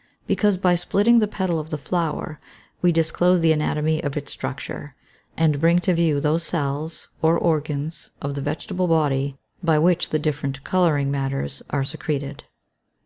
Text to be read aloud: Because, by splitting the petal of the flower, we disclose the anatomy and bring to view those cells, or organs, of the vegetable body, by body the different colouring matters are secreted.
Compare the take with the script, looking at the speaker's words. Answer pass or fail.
fail